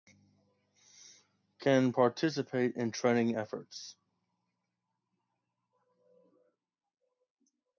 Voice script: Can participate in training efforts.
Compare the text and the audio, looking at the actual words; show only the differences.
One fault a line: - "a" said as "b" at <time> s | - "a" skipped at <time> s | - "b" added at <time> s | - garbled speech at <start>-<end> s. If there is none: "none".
none